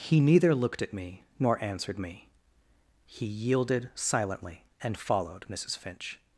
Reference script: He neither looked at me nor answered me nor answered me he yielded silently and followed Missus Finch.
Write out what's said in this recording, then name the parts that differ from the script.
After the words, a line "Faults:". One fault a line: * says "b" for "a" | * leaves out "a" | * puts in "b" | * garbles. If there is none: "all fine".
He neither looked at me nor answered me he yielded silently and followed Missus Finch.
Faults:
* leaves out "nor answered me"